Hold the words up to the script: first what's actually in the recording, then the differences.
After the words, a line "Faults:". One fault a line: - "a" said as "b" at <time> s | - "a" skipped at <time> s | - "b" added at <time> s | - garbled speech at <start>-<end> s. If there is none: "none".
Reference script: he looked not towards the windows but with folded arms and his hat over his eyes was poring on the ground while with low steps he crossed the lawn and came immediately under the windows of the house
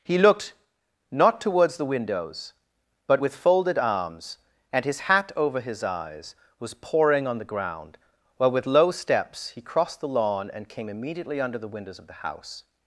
he looked not towards the windows but with folded arms and his hat over his eyes was poring on the ground while with low steps he crossed the lawn and came immediately under the windows of the house
Faults:
none